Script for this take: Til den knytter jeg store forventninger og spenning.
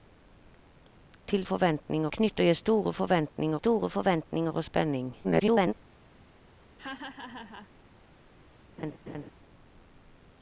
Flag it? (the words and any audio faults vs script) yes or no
yes